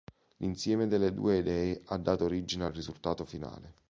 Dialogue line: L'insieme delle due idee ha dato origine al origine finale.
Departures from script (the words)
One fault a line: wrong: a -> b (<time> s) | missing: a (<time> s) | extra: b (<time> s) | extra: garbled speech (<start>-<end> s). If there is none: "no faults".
wrong: origine -> risultato (2.7 s)